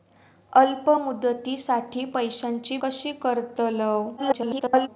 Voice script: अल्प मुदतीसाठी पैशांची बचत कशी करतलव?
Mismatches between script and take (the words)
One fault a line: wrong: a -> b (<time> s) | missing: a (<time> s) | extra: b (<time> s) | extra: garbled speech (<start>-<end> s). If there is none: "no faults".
missing: बचत (2.8 s)
extra: garbled speech (4.2-4.9 s)